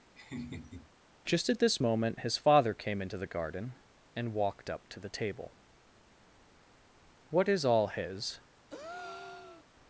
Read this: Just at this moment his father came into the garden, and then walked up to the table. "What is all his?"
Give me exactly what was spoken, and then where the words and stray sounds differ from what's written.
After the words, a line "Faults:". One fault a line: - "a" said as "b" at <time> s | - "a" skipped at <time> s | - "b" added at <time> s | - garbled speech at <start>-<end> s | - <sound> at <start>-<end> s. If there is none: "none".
Just at this moment his father came into the garden, and walked up to the table. "What is all his?"
Faults:
- laugh at 0.2-0.9 s
- "then" skipped at 4.3 s
- breath at 8.7-9.7 s